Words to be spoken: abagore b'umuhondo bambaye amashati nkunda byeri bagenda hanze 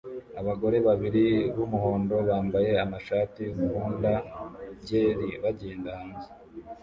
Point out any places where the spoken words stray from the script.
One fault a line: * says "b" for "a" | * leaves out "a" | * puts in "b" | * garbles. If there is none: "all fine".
* puts in "babiri"